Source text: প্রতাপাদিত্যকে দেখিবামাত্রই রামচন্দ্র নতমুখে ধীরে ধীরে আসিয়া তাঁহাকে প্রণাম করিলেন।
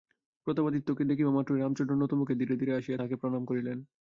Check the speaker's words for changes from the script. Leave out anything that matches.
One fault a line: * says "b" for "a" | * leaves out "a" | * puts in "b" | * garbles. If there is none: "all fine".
all fine